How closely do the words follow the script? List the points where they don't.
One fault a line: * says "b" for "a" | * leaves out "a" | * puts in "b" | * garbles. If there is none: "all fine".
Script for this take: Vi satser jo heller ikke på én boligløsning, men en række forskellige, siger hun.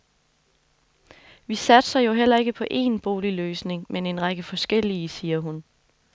all fine